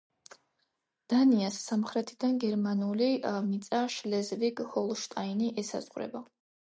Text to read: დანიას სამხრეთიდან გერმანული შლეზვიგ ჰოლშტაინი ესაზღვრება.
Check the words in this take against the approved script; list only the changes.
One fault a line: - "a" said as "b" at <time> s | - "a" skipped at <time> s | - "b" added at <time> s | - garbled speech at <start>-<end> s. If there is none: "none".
- "მიწა" added at 3.5 s